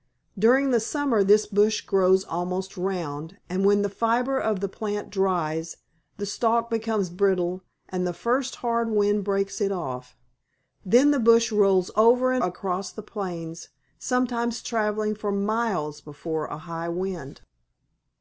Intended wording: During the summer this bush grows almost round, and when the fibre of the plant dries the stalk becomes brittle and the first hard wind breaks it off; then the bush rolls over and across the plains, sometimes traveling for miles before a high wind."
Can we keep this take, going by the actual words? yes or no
yes